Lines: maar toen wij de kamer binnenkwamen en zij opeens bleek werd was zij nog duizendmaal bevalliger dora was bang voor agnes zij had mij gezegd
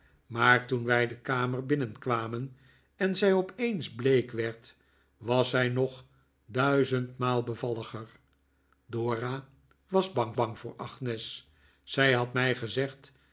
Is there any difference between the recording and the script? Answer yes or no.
yes